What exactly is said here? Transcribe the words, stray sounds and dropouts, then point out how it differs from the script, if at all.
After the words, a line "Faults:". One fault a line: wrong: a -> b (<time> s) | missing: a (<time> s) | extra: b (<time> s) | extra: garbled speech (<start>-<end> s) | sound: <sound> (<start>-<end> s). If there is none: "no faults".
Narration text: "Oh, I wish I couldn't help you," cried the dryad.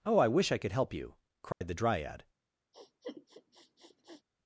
"Oh, I wish I could help you," cried the dryad.
Faults:
wrong: couldn't -> could (0.6 s)
sound: dropout (1.5-1.6 s)
sound: sniff (2.7-4.2 s)